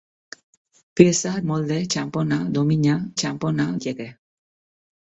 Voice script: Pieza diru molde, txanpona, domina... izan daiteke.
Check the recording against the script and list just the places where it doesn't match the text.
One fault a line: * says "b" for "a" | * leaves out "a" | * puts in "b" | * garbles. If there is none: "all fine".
* leaves out "diru"
* says "txanpona" for "izan"